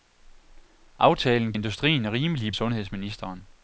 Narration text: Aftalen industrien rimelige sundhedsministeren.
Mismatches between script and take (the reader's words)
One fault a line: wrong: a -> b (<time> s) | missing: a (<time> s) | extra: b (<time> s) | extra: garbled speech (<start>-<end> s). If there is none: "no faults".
no faults